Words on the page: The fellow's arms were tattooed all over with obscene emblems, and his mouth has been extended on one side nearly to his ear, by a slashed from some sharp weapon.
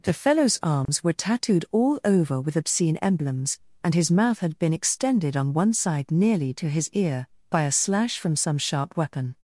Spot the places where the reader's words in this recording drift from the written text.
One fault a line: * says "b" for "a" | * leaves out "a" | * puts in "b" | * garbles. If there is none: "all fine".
* says "had" for "has"
* says "slash" for "slashed"